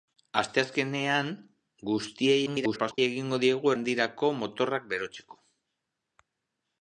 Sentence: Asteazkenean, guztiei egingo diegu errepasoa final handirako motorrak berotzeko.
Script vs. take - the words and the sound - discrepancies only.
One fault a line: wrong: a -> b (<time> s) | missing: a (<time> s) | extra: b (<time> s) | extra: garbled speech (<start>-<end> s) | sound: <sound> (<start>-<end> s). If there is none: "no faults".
extra: garbled speech (2.5-3.0 s)
missing: errepasoa final (3.7 s)